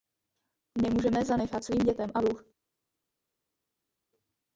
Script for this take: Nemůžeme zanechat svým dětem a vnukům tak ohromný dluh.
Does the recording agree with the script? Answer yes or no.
no